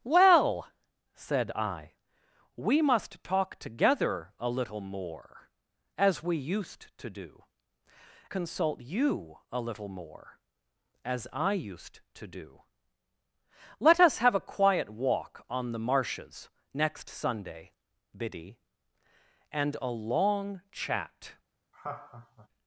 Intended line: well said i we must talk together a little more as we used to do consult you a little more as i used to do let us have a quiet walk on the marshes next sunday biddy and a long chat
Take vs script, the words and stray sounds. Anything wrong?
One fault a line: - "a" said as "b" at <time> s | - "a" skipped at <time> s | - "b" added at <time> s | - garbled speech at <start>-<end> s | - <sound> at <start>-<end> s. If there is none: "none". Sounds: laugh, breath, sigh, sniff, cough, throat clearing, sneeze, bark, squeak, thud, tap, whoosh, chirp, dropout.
- laugh at 21.7-22.5 s